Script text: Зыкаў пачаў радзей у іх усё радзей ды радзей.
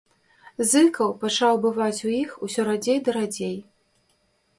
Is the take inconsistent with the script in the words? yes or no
yes